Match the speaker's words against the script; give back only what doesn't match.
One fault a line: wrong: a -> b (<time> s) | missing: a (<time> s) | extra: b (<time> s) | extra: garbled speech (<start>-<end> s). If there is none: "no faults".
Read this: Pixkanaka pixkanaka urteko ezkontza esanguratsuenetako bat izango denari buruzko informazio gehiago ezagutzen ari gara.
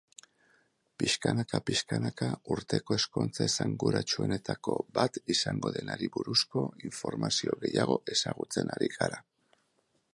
no faults